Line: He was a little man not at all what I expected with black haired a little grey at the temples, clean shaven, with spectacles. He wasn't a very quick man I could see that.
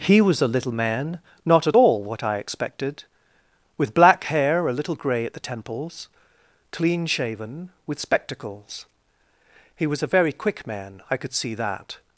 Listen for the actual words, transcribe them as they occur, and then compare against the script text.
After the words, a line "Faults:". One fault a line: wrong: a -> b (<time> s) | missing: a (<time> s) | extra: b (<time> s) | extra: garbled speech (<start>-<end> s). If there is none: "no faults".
He was a little man not at all what I expected with black hair a little grey at the temples, clean shaven, with spectacles. He was a very quick man I could see that.
Faults:
wrong: haired -> hair (4.2 s)
wrong: wasn't -> was (9.9 s)